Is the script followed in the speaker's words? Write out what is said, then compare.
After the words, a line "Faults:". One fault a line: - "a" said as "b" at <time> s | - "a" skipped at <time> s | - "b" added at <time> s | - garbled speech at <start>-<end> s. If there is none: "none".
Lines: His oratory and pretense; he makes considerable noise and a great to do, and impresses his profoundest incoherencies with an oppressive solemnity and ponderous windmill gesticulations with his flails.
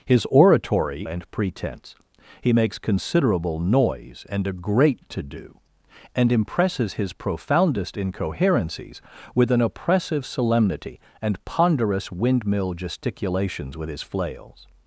His oratory and pretense; he makes considerable noise and a great to do, and impresses his profoundest incoherencies with an oppressive solemnity and ponderous windmill gesticulations with his flails.
Faults:
none